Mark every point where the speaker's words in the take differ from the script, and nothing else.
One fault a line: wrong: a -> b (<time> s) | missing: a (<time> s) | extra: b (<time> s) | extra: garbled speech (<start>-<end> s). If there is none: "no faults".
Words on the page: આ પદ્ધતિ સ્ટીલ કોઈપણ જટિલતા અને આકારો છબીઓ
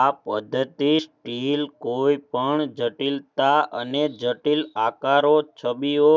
extra: જટિલ (4.2 s)